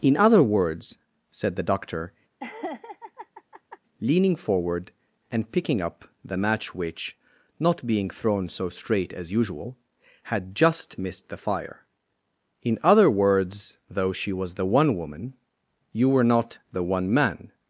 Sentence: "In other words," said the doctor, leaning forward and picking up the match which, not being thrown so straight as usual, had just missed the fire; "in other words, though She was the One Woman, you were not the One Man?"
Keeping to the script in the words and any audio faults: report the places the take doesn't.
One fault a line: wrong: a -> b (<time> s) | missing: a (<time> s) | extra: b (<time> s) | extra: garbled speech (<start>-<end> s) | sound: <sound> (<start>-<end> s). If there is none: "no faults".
sound: laugh (2.4-3.8 s)